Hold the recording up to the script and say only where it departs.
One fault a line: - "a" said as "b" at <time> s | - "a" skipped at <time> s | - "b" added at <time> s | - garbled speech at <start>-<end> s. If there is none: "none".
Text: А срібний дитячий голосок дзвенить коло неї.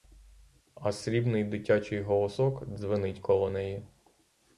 none